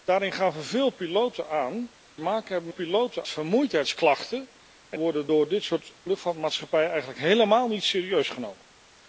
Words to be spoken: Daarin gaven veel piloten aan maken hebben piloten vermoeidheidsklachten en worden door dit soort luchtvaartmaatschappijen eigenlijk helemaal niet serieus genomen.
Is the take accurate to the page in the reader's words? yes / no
yes